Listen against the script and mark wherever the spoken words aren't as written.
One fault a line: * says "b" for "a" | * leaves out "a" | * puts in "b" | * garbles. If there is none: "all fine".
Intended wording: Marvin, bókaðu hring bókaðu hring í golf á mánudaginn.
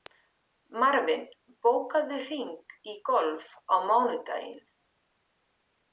* leaves out "bókaðu hring"